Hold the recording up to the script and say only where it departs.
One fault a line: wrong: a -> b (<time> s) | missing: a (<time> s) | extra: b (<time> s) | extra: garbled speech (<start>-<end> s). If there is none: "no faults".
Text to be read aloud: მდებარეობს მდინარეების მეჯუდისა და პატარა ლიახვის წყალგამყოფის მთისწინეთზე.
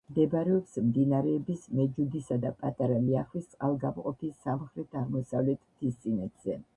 extra: სამხრეთ აღმოსავლეთ (4.5 s)